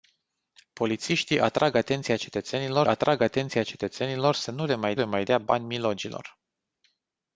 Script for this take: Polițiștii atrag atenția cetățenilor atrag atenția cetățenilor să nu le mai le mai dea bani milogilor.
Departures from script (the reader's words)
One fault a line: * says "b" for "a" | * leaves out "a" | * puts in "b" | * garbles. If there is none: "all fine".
all fine